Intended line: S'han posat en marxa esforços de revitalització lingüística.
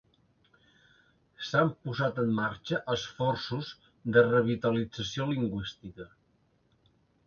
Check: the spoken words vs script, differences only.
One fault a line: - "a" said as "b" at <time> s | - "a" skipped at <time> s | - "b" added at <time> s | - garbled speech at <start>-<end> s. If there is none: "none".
none